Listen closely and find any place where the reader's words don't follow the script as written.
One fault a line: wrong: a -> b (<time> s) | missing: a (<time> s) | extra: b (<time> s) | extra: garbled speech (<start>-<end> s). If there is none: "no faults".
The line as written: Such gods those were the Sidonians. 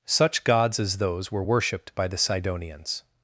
extra: as (0.8 s)
extra: worshipped by (1.4 s)